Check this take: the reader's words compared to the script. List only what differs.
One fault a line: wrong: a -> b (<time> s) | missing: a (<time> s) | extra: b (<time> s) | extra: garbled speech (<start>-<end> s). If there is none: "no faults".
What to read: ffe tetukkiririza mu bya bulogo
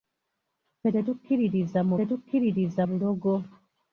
wrong: bya -> tetukkiririza (2.0 s)